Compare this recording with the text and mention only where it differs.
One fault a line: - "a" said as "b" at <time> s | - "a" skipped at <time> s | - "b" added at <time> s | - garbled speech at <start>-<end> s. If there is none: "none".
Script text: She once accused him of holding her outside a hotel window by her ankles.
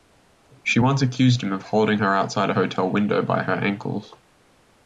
none